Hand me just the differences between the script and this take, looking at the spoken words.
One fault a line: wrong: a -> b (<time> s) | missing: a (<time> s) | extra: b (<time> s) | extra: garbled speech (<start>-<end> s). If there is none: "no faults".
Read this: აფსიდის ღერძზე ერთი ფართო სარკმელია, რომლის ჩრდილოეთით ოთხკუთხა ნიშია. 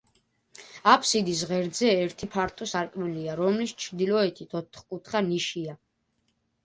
no faults